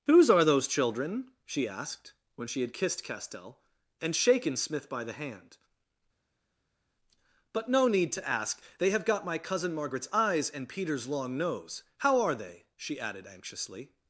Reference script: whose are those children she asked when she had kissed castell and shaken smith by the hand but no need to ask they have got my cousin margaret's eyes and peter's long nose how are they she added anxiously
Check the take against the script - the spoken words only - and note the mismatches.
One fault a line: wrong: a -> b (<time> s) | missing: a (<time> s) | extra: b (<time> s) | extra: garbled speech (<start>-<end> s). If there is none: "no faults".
no faults